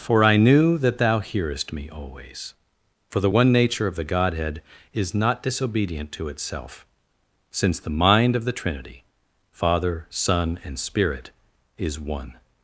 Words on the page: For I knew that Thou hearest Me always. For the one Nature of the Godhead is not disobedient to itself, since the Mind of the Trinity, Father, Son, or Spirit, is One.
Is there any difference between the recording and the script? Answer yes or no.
yes